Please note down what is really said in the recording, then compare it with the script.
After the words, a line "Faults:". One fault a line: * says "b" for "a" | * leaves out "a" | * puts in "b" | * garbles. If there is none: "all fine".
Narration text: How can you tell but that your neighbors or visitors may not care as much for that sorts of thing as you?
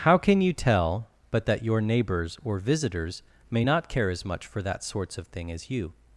How can you tell but that your neighbors or visitors may not care as much for that sorts of thing as you?
Faults:
all fine